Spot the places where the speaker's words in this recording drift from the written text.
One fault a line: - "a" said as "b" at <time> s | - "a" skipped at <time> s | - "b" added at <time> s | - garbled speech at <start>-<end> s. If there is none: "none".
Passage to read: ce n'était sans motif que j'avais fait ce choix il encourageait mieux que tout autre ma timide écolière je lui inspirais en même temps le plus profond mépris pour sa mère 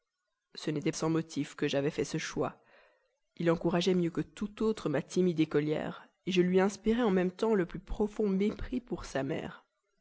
none